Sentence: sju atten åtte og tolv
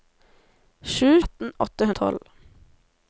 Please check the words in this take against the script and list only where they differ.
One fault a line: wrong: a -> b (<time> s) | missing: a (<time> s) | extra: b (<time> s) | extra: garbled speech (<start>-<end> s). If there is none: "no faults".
no faults